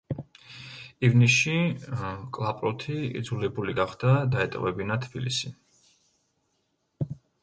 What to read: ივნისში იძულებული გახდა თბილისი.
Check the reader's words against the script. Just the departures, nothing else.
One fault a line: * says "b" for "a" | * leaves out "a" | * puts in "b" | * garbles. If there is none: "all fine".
* puts in "კლაპროთი"
* puts in "დაეტოვებინა"